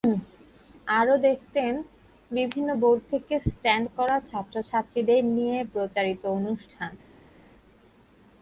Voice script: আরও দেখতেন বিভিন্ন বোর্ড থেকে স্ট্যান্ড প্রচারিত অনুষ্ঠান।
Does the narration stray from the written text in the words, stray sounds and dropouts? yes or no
yes